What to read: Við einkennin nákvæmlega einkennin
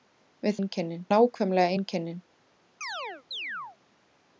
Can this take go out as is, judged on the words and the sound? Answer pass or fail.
fail